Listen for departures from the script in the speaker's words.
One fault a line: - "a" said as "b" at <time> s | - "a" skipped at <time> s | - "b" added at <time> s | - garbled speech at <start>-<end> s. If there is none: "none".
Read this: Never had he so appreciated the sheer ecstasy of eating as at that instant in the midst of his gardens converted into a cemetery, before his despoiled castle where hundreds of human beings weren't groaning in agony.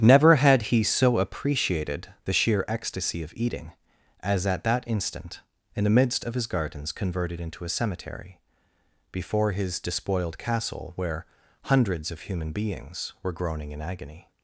- "weren't" said as "were" at 13.2 s